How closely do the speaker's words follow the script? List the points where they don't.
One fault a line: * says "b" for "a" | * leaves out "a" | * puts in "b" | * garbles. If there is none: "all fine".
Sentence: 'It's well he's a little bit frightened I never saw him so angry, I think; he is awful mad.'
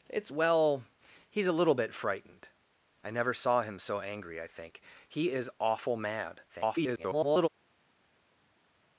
* garbles